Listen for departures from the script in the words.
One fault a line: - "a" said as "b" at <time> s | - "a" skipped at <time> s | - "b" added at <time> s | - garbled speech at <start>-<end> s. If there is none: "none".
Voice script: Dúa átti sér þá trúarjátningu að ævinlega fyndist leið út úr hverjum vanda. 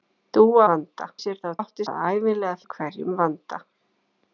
- "átti" said as "vanda" at 0.7 s
- "trúarjátningu" said as "átti" at 1.6 s
- "fyndist leið út" skipped at 2.6 s